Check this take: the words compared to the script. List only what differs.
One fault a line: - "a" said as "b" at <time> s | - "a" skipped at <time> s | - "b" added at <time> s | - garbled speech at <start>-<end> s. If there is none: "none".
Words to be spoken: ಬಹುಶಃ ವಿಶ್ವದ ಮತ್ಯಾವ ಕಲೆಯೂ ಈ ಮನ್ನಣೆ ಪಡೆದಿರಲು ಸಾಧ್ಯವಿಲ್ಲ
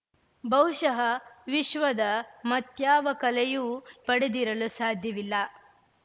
- "ಈ ಮನ್ನಣೆ" skipped at 3.7 s